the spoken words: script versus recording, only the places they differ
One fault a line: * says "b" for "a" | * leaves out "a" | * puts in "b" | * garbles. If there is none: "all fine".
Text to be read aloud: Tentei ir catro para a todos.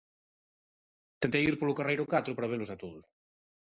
* puts in "polo carreiro"
* puts in "velos"